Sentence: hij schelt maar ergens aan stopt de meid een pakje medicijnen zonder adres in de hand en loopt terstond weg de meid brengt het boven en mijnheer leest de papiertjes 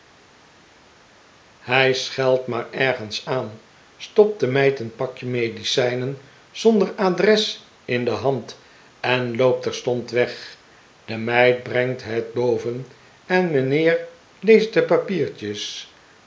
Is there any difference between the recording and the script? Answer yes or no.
no